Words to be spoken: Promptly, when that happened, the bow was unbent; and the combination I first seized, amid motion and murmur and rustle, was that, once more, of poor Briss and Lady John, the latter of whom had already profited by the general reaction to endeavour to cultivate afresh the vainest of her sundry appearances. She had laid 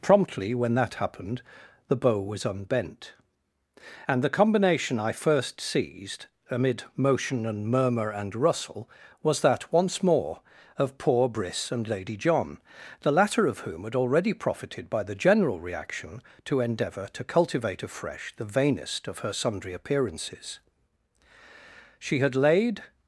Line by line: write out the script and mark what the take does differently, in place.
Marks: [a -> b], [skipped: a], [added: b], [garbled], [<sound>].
Promptly, when that happened, the bow was unbent; and the combination I first seized, amid motion and murmur and rustle, was that, once more, of poor Briss and Lady John, the latter of whom had already profited by the general reaction to endeavour to cultivate afresh the vainest of her sundry appearances. She had laid